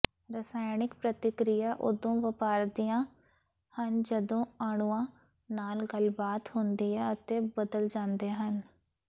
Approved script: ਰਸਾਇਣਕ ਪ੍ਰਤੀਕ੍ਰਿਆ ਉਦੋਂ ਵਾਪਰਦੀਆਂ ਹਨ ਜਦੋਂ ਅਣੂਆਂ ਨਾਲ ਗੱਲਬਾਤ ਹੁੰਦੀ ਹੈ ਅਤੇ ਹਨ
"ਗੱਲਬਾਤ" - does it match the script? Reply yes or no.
yes